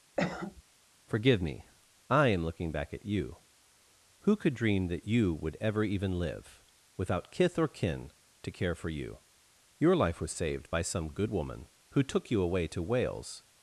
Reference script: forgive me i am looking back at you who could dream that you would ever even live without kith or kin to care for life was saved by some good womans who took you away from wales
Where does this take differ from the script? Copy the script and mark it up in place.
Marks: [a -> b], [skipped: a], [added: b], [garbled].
forgive me i am looking back at you who could dream that you would ever even live without kith or kin to care for [added: you your] life was saved by some good [womans -> woman] who took you away [from -> to] wales